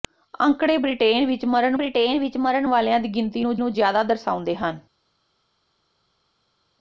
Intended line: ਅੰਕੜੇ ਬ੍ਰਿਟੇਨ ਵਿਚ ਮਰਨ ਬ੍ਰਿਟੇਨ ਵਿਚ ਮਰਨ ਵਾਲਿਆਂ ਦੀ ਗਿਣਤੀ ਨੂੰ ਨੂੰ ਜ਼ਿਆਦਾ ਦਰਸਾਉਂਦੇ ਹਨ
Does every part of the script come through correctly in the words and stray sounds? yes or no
yes